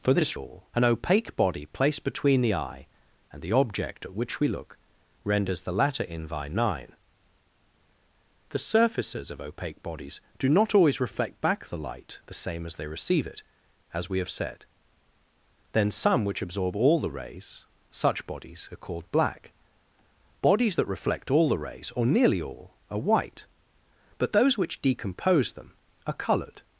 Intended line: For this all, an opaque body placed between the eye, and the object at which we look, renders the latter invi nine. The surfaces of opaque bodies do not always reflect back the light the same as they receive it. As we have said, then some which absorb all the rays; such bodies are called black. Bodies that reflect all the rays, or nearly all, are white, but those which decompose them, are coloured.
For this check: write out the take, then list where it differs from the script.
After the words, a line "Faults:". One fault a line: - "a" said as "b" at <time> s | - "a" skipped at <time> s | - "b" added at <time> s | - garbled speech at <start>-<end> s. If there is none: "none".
For this all, an opaque body placed between the eye, and the object at which we look, renders the latter invi nine. The surfaces of opaque bodies do not always reflect back the light the same as they receive it. As we have said, then some which absorb all the rays; such bodies are called black. Bodies that reflect all the rays, or nearly all, are white, but those which decompose them, are coloured.
Faults:
none